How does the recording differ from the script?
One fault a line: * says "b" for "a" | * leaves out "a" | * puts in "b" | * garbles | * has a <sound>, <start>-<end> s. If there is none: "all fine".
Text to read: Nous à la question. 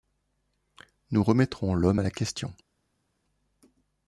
* puts in "remettrons l'homme"